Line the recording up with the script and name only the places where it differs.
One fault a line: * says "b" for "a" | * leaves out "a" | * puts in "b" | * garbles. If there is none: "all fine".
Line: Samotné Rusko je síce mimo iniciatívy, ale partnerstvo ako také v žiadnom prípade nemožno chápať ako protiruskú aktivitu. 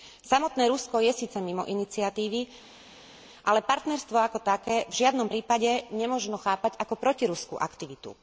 all fine